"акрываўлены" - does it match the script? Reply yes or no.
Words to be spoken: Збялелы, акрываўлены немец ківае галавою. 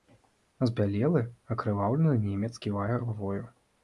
yes